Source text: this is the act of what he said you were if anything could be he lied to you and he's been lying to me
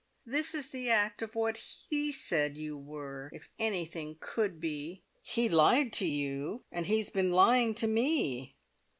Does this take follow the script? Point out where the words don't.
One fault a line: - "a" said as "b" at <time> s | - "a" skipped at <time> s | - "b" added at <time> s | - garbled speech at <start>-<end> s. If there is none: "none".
none